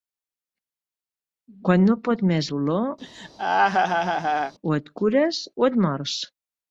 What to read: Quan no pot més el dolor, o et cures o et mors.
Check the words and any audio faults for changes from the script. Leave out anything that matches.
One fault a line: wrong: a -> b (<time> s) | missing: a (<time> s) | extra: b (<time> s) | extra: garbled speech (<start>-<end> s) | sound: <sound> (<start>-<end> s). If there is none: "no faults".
missing: el (2.5 s)
sound: laugh (3.0-4.5 s)